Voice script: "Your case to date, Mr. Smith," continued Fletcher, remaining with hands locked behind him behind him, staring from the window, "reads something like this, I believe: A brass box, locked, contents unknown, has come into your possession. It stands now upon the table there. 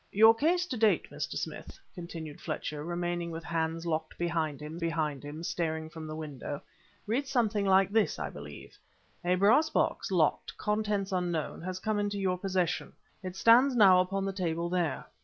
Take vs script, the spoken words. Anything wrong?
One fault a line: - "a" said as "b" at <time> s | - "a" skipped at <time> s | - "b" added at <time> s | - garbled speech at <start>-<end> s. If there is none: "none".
none